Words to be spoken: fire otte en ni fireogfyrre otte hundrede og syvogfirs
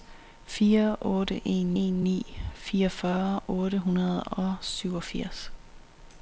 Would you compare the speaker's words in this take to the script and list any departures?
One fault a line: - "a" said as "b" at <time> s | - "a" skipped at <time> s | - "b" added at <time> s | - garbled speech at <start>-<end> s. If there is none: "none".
- "en" added at 1.8 s